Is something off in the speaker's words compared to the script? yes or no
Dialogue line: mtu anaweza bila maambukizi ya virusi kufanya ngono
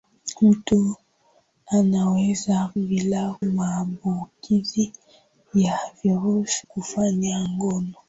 no